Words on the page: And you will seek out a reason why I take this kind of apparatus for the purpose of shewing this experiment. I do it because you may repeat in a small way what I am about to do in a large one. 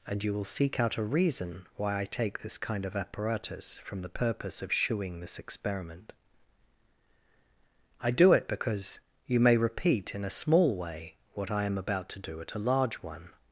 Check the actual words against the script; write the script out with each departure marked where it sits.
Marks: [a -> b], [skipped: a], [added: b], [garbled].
And you will seek out a reason why I take this kind of apparatus [for -> from] the purpose of shewing this experiment. I do it because you may repeat in a small way what I am about to do [in -> at] a large one.